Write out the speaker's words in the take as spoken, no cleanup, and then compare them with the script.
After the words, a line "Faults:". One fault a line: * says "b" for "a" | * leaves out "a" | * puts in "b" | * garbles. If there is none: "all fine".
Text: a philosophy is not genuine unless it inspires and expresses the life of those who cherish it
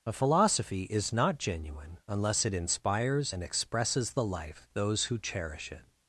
a philosophy is not genuine unless it inspires and expresses the life those who cherish it
Faults:
* leaves out "of"